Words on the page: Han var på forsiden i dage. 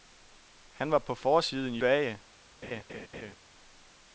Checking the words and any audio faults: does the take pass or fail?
fail